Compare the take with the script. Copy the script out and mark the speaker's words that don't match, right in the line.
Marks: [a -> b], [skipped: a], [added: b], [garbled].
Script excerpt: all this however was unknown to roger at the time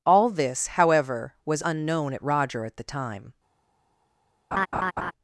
all this however was unknown [to -> at] roger at the time